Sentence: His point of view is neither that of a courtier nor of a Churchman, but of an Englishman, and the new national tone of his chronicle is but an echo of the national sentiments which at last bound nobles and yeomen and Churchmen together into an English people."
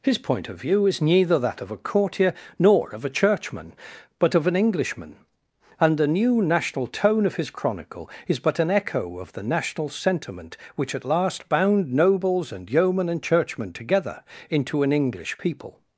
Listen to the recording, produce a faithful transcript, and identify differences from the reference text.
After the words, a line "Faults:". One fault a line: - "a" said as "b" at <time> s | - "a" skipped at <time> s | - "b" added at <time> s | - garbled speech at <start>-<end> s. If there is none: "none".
His point of view is neither that of a courtier nor of a Churchman, but of an Englishman, and the new national tone of his chronicle is but an echo of the national sentiment which at last bound nobles and yeomen and Churchmen together into an English people."
Faults:
- "sentiments" said as "sentiment" at 9.9 s